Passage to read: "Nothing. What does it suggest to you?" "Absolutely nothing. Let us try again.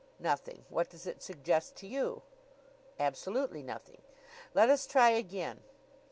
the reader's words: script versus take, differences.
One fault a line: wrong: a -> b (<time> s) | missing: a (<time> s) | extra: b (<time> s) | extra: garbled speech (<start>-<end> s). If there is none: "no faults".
no faults